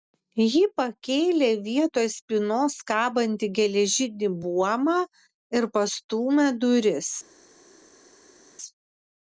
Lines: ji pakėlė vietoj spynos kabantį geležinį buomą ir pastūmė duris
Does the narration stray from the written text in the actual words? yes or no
no